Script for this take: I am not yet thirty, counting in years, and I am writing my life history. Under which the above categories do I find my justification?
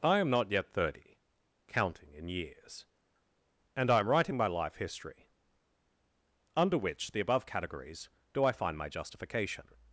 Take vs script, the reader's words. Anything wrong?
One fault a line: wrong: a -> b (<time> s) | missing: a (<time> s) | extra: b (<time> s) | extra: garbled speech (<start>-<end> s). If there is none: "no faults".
no faults